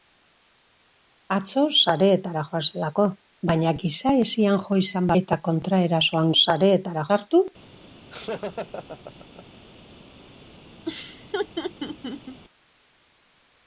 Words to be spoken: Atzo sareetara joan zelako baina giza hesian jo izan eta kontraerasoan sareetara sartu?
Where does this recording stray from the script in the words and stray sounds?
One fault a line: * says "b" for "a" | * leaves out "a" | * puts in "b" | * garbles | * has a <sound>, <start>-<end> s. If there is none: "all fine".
* has a laugh, 8.1-9.6 s
* has a laugh, 10.9-12.4 s